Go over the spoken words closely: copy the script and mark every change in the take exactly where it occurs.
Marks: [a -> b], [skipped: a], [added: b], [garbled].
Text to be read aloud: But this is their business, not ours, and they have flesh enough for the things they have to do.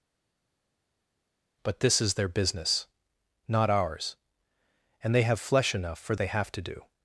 But this is their business, not ours, and they have flesh enough for [skipped: the things] they have to do.